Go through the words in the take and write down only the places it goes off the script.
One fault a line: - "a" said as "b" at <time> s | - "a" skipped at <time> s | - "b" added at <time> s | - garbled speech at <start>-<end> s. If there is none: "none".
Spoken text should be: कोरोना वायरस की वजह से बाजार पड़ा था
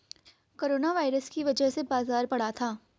none